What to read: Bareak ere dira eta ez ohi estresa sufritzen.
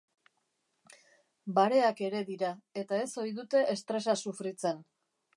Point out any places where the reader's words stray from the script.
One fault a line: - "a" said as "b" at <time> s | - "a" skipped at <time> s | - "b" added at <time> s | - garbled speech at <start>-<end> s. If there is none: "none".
- "dute" added at 3.4 s